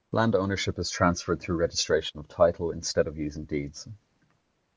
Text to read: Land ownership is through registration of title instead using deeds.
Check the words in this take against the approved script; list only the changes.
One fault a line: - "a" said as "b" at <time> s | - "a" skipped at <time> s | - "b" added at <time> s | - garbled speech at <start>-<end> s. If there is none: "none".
- "transferred" added at 0.9 s
- "of" added at 3.1 s